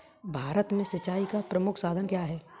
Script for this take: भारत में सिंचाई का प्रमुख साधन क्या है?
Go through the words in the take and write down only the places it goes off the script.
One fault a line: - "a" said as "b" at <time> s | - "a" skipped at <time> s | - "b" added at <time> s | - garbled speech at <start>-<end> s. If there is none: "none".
none